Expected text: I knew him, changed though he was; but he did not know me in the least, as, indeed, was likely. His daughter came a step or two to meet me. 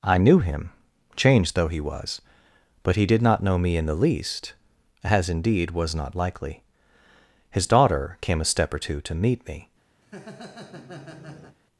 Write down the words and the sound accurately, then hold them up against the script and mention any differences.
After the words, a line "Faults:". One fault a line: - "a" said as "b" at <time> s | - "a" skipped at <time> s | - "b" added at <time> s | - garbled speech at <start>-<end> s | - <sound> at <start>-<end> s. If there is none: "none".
I knew him, changed though he was; but he did not know me in the least, as, indeed, was not likely. His daughter came a step or two to meet me.
Faults:
- "not" added at 5.9 s
- laugh at 10.0-11.6 s